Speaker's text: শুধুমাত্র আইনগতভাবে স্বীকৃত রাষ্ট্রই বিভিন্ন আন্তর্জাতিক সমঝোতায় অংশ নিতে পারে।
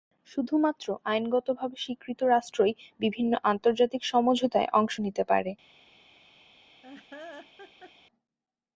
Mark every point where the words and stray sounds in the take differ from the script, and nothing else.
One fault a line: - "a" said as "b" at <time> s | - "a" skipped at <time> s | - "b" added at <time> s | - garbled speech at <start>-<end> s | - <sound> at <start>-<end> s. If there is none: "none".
- laugh at 6.8-7.9 s